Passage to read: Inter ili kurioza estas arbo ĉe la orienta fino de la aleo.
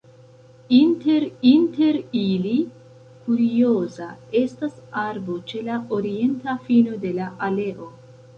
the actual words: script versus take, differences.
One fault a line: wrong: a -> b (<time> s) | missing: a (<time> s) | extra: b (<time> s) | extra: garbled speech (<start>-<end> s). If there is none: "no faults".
extra: inter (1.5 s)